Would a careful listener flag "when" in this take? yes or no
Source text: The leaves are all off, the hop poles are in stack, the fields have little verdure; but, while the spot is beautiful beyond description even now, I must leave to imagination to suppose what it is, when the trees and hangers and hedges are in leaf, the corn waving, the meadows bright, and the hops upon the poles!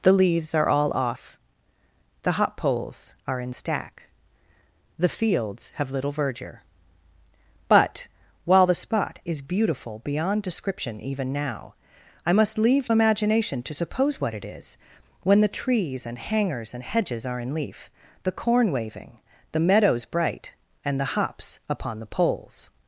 no